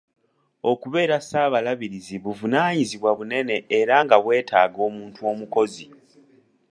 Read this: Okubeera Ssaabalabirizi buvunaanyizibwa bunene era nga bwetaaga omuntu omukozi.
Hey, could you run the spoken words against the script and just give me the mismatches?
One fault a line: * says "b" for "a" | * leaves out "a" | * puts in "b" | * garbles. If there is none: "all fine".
all fine